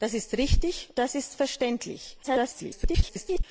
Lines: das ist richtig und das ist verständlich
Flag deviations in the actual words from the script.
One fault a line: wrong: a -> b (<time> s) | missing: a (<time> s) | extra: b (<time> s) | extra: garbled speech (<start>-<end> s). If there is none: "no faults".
missing: und (0.9 s)
extra: garbled speech (2.2-3.4 s)